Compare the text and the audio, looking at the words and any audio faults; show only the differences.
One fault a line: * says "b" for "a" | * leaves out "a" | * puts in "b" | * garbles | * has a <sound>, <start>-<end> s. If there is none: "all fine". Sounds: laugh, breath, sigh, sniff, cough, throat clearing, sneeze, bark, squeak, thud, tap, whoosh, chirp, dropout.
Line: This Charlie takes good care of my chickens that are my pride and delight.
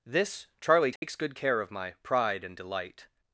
* has a dropout, 1.0-1.0 s
* leaves out "chickens that are my"